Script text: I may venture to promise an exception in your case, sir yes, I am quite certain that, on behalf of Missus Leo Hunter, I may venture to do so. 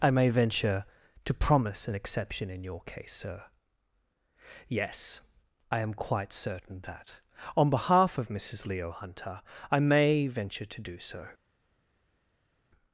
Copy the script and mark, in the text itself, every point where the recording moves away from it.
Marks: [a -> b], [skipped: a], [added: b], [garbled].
I may venture to promise an exception in your case, sir yes, I am quite certain that, on behalf of Missus Leo Hunter, I may venture to do so.